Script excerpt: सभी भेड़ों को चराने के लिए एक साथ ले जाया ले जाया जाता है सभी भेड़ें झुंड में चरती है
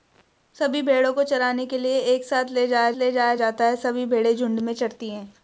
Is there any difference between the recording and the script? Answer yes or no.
no